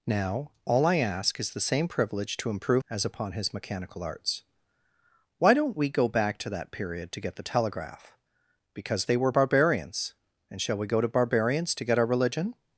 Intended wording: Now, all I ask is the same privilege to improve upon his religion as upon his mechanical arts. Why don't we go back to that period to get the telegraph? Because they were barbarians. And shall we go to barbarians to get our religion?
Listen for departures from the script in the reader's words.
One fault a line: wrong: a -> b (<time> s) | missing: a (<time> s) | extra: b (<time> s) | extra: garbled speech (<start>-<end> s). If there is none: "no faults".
missing: upon his religion (2.8 s)